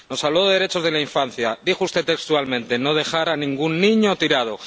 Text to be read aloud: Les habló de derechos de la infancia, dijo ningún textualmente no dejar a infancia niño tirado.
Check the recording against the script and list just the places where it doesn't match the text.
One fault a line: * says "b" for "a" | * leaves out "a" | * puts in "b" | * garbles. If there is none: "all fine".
* says "Nos" for "Les"
* says "usted" for "ningún"
* says "ningún" for "infancia"